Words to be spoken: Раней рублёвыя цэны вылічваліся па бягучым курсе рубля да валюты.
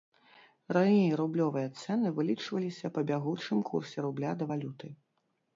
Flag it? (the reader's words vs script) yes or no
no